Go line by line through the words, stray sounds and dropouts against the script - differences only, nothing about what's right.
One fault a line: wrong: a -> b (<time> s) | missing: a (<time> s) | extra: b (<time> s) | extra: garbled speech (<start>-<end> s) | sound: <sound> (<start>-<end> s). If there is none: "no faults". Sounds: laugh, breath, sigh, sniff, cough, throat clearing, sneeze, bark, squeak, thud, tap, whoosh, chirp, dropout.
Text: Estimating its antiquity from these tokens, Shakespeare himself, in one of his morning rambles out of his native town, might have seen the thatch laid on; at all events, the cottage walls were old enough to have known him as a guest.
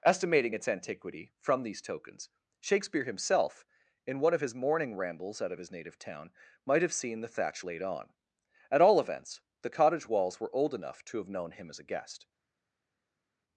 no faults